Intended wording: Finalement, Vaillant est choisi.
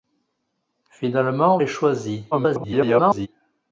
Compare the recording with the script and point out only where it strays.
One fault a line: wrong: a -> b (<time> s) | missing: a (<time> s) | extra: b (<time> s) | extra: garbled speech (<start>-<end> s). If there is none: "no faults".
missing: Vaillant (1.6 s)
extra: garbled speech (2.3-3.3 s)